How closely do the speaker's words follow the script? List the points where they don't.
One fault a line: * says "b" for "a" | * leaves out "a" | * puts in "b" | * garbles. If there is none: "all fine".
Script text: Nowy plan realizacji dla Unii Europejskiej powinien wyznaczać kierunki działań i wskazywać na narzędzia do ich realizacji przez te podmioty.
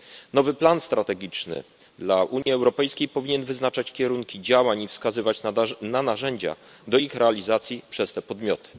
* says "strategiczny" for "realizacji"